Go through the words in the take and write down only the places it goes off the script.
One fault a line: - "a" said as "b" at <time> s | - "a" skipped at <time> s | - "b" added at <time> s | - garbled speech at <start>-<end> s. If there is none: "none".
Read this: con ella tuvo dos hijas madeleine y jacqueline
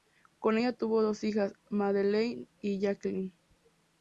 none